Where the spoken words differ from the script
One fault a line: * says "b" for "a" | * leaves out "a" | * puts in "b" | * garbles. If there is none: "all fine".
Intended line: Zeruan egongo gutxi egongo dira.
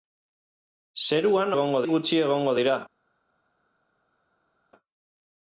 all fine